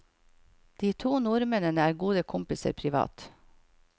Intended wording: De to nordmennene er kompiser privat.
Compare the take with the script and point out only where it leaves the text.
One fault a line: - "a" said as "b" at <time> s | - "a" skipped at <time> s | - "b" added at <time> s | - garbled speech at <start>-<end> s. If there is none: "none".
- "gode" added at 2.0 s